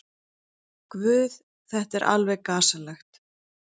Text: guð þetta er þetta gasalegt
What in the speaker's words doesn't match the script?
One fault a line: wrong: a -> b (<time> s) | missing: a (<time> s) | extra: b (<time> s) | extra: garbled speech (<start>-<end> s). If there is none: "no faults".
wrong: þetta -> alveg (2.2 s)